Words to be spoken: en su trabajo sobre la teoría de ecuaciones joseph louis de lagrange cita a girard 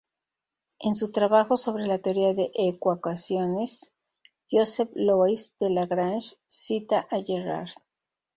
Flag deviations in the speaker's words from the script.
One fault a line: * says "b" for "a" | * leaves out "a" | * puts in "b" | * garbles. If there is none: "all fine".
all fine